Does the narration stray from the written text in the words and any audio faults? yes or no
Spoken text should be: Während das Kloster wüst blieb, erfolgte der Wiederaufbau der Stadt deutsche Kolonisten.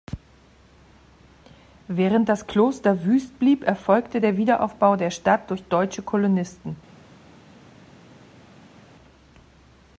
yes